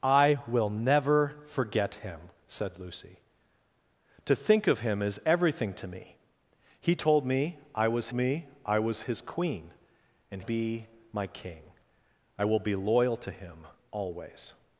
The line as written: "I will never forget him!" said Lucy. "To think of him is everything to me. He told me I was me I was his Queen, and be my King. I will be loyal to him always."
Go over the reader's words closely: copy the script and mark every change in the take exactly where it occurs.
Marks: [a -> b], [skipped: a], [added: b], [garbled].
"I will never forget him!" said Lucy. "To think of him is everything to me. He told me I was me I was his Queen, and be my King. I will be loyal to him always."